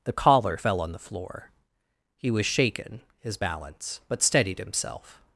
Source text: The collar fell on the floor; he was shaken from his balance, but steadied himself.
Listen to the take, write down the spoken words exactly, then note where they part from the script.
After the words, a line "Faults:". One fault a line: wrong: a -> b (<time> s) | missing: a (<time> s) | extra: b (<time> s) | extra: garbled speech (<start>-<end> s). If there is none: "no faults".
The collar fell on the floor; he was shaken his balance, but steadied himself.
Faults:
missing: from (3.0 s)